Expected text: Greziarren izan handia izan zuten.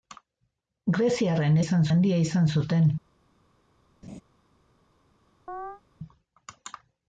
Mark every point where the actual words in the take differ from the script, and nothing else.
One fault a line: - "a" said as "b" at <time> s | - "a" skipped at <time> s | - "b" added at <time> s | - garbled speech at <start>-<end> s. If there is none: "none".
none